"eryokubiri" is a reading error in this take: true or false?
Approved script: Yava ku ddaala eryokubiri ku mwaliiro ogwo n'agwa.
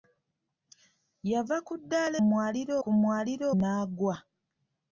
true